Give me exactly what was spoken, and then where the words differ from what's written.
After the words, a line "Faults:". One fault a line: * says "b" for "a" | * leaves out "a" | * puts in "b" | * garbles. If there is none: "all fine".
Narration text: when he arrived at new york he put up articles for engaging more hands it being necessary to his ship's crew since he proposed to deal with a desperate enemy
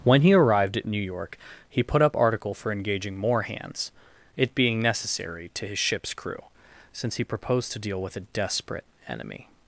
when he arrived at new york he put up article for engaging more hands it being necessary to his ship's crew since he proposed to deal with a desperate enemy
Faults:
* says "article" for "articles"